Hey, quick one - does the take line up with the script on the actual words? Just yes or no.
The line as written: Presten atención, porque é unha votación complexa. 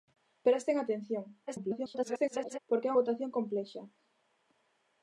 no